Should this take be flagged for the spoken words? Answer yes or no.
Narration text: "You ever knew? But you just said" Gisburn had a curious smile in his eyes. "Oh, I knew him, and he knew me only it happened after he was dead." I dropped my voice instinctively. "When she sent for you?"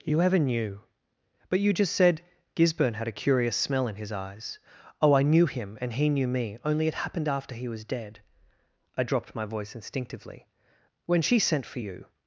yes